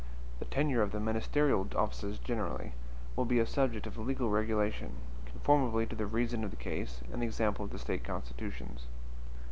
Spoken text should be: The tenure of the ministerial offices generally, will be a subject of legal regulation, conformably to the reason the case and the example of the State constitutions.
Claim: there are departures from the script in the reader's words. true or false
true